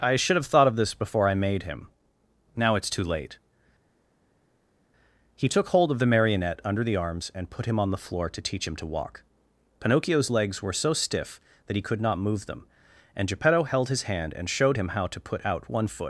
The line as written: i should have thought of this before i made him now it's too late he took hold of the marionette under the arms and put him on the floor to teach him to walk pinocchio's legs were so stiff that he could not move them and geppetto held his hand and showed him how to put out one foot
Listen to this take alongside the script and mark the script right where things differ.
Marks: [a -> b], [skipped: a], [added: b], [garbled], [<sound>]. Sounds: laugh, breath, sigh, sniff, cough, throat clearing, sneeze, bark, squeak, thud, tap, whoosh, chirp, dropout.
i should have thought of this before i made him now it's too late he took hold of the marionette under the arms and put him on the floor to teach him to walk pinocchio's legs were so stiff that he could not move them and geppetto held his hand and showed him how to put out one foot